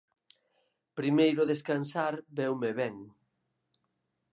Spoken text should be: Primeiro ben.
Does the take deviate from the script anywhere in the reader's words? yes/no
yes